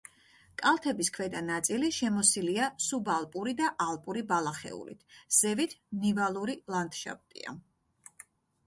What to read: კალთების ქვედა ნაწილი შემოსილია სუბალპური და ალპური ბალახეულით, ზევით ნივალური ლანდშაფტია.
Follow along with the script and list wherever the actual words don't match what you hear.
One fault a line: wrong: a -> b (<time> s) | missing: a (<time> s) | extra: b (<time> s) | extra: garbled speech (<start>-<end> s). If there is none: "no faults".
no faults